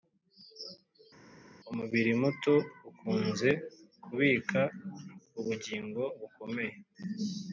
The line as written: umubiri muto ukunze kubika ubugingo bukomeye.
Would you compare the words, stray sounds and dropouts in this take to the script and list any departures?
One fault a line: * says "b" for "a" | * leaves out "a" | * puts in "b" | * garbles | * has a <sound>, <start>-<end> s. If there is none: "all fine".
all fine